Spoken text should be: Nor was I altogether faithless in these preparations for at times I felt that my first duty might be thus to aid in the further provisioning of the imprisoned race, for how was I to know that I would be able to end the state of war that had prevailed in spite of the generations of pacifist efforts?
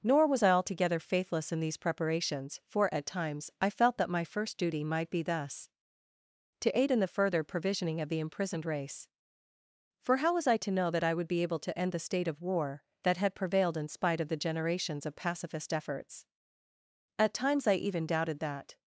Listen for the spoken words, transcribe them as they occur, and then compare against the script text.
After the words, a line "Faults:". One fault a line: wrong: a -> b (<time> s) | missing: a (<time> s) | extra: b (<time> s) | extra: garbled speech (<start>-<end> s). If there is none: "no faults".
Nor was I altogether faithless in these preparations for at times I felt that my first duty might be thus to aid in the further provisioning of the imprisoned race, for how was I to know that I would be able to end the state of war that had prevailed in spite of the generations of pacifist efforts? At times I even doubted that
Faults:
extra: At times I even doubted that (17.2 s)